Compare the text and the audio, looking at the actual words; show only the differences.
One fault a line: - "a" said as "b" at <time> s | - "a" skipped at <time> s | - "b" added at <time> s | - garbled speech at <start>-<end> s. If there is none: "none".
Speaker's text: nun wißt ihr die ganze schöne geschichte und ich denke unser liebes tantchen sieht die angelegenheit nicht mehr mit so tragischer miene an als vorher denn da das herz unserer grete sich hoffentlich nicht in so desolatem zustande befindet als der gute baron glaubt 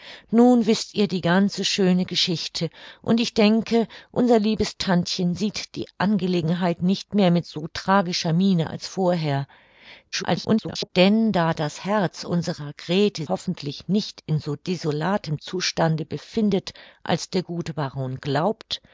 - "an" skipped at 8.7 s
- garbled speech at 10.1-10.9 s
- "sich" skipped at 13.3 s